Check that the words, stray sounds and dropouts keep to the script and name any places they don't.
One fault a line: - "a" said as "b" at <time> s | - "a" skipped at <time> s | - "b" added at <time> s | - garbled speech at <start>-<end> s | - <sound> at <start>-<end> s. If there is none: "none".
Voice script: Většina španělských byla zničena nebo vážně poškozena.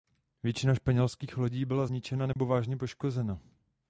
- "lodí" added at 1.4 s
- dropout at 2.3-2.4 s